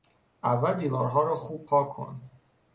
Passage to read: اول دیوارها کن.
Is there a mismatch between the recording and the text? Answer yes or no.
yes